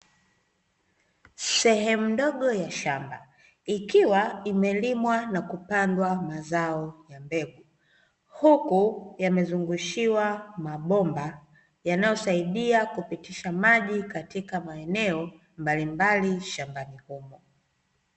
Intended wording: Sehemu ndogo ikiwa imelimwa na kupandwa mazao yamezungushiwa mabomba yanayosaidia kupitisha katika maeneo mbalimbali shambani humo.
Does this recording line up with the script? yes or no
no